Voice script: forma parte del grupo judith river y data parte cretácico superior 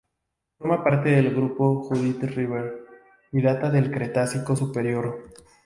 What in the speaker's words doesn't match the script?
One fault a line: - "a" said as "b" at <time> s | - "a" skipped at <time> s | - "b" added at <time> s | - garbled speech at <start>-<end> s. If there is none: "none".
- "parte" said as "del" at 3.7 s